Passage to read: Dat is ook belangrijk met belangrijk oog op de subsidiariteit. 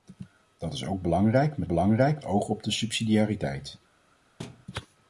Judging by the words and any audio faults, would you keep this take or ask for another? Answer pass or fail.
fail